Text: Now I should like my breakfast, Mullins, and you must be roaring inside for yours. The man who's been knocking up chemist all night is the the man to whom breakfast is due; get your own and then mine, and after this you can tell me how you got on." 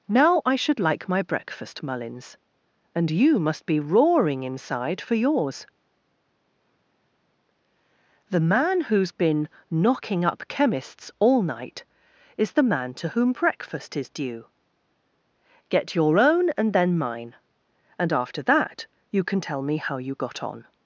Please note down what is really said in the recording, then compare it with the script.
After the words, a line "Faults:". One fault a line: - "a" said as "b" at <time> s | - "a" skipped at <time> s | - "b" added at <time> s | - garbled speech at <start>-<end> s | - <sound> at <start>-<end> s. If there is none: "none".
Now I should like my breakfast, Mullins, and you must be roaring inside for yours. The man who's been knocking up chemists all night is the man to whom breakfast is due; get your own and then mine, and after that you can tell me how you got on."
Faults:
- "chemist" said as "chemists" at 10.5 s
- "the" skipped at 12.7 s
- "this" said as "that" at 18.4 s